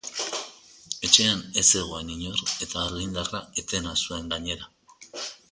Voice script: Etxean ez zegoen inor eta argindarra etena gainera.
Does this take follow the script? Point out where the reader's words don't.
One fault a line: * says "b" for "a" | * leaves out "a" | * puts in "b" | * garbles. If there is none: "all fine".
* puts in "zuen"